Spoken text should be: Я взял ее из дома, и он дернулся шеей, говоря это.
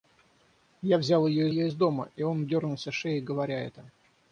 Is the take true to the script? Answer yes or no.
no